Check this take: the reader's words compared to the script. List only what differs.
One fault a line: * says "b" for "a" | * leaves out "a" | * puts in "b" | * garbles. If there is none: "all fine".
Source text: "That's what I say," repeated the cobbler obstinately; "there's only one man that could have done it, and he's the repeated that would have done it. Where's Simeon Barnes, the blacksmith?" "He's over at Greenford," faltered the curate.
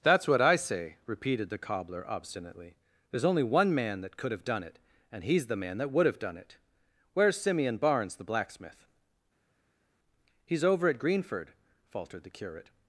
* says "man" for "repeated"